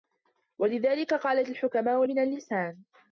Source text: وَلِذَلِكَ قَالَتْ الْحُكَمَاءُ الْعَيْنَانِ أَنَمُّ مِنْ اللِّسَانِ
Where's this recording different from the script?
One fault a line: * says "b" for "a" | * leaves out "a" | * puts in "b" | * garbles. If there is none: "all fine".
* leaves out "الْعَيْنَانِ أَنَمُّ"